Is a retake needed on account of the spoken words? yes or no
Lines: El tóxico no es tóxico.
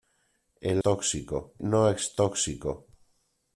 no